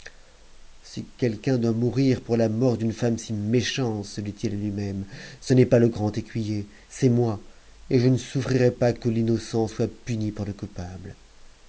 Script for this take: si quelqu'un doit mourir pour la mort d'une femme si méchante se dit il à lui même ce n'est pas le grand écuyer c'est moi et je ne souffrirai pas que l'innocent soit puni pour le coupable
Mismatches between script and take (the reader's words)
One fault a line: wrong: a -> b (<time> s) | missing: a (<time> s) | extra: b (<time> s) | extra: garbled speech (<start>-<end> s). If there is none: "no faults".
no faults